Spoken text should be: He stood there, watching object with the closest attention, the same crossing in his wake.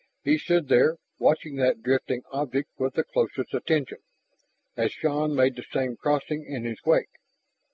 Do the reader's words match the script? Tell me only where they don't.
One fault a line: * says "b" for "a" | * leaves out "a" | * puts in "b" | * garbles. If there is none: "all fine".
* puts in "that drifting"
* puts in "as Shann made"